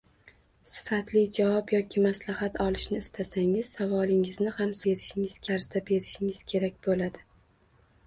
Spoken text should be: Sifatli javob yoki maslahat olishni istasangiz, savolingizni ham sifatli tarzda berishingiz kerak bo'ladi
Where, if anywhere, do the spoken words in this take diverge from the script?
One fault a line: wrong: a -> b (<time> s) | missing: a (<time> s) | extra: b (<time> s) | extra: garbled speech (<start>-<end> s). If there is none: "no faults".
wrong: sifatli -> berishingiz (4.9 s)